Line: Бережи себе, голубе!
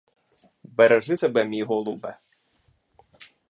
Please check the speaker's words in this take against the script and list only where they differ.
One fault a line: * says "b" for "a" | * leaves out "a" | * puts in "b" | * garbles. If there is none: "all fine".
* puts in "мій"